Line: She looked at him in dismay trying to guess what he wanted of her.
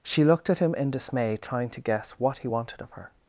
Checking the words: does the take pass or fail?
pass